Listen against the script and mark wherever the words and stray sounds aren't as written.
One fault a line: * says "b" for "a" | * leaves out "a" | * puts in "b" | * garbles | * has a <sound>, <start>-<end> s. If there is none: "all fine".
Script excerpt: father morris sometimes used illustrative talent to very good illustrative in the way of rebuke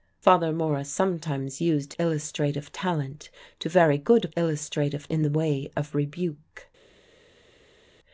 all fine